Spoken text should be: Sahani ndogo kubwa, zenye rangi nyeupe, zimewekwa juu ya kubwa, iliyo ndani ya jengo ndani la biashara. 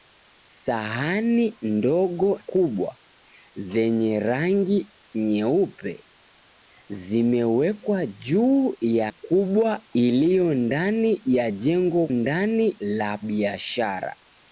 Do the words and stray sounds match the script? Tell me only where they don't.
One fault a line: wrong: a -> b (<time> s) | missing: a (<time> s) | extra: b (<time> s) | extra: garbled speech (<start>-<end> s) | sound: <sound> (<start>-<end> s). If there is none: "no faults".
no faults